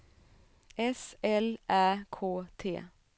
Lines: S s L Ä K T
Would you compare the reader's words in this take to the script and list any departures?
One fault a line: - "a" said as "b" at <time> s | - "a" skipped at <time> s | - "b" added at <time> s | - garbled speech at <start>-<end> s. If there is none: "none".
- "s" skipped at 1.1 s